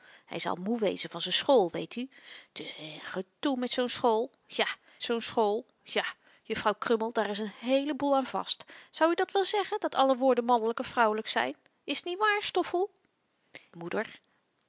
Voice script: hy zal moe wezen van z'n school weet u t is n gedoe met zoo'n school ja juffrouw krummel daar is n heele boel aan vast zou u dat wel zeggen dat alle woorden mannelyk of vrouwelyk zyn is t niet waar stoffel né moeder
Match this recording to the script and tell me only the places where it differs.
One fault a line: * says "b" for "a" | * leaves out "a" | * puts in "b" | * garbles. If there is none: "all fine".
* puts in "zoo'n school ja"
* leaves out "né"